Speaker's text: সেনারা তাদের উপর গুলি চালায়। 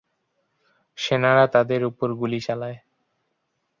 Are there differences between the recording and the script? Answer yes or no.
no